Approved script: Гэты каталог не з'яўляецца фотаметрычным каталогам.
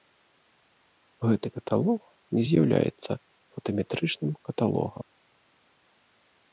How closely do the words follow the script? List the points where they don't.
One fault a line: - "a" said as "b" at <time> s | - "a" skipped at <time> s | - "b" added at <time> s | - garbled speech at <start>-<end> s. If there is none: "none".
none